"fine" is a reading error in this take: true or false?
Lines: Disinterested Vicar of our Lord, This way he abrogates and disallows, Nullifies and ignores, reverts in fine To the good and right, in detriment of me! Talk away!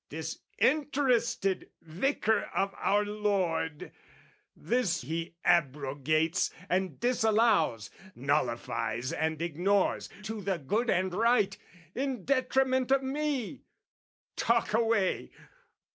true